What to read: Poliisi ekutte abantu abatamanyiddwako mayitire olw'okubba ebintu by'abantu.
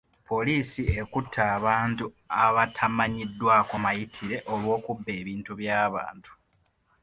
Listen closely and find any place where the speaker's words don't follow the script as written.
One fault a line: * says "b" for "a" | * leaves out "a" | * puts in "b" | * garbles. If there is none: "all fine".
all fine